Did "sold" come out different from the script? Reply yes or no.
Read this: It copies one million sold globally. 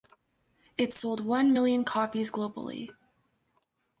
yes